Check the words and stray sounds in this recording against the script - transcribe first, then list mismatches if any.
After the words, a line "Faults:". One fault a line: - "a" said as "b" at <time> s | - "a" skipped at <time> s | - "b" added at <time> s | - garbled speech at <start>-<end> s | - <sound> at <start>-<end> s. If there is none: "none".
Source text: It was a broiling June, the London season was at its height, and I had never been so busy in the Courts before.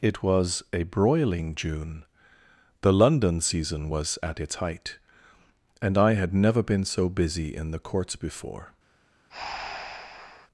It was a broiling June, the London season was at its height, and I had never been so busy in the Courts before.
Faults:
- breath at 9.3-10.5 s